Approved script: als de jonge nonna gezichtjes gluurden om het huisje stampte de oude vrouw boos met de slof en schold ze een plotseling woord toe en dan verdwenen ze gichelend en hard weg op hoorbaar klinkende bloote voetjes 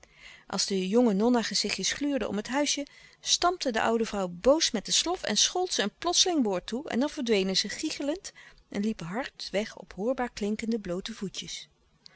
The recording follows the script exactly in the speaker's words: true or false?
false